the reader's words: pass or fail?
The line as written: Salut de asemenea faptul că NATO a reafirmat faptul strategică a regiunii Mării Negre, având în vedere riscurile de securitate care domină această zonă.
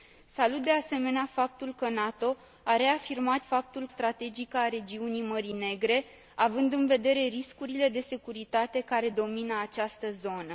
pass